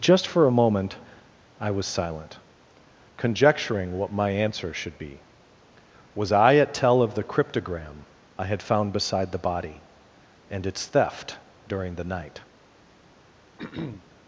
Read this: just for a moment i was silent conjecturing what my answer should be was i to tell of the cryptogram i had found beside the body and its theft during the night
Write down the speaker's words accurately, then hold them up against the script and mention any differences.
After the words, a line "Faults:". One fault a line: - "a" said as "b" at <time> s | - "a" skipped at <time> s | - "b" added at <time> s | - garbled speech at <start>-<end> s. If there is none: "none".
just for a moment i was silent conjecturing what my answer should be was i at tell of the cryptogram i had found beside the body and its theft during the night
Faults:
- "to" said as "at" at 6.5 s